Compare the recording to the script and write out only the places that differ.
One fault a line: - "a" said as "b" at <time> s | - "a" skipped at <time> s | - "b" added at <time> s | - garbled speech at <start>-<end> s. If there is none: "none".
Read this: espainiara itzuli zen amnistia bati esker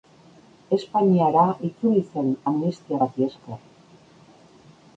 none